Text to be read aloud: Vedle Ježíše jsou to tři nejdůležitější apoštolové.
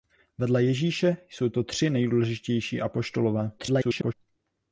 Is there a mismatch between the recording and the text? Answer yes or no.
yes